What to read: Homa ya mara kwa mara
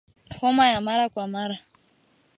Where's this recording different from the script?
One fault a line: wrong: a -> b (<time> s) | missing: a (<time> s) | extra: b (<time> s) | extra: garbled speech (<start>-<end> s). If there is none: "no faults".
no faults